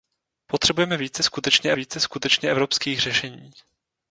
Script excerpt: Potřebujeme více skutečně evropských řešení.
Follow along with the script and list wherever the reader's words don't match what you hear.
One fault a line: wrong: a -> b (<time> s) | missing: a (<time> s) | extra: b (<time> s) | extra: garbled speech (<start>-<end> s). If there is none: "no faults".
extra: více skutečně (1.7 s)